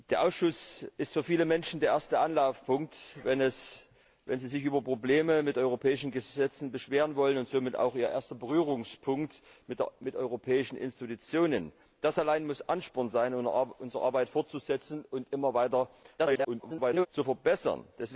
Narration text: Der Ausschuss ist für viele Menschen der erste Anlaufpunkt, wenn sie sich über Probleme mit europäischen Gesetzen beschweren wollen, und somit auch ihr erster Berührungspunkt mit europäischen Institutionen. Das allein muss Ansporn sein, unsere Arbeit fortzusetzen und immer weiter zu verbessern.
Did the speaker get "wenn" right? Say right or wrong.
right